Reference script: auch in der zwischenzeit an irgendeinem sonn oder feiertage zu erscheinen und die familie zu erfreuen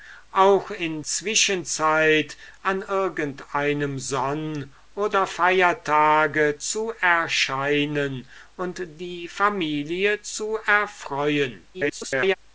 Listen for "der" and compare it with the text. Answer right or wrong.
wrong